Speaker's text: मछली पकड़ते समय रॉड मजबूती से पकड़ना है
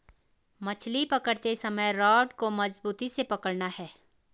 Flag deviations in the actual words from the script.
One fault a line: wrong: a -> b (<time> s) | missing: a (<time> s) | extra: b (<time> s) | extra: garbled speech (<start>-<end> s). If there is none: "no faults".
extra: को (2.3 s)